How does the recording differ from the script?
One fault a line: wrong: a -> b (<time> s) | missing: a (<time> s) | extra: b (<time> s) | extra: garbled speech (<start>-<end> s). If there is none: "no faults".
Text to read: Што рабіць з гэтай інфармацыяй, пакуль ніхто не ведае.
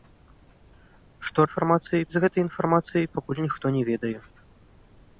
wrong: рабіць -> інфармацыяй (1.4 s)